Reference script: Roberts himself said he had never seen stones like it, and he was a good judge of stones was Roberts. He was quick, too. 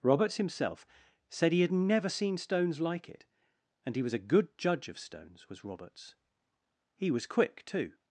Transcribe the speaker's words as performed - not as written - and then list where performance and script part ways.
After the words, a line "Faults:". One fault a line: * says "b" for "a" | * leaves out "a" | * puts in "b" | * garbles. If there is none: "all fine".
Roberts himself said he had never seen stones like it, and he was a good judge of stones was Roberts. He was quick, too.
Faults:
all fine